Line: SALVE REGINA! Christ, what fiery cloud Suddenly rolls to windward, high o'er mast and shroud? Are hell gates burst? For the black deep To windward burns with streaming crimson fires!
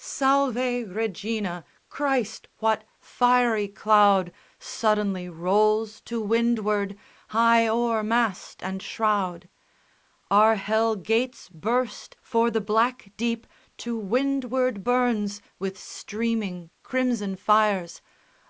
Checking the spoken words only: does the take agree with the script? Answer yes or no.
yes